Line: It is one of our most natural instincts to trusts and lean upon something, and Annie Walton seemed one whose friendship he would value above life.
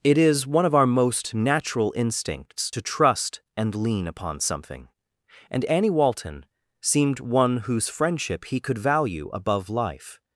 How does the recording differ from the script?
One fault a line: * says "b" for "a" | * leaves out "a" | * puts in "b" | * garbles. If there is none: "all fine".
* says "trust" for "trusts"
* says "could" for "would"